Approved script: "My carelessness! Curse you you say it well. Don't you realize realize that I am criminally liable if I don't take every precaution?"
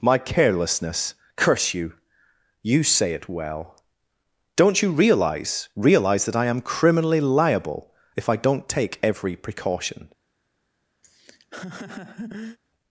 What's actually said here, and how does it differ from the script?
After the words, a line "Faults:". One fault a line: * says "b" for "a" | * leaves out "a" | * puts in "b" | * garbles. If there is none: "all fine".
"My carelessness! Curse you you say it well. Don't you realize realize that I am criminally liable if I don't take every precaution?"
Faults:
all fine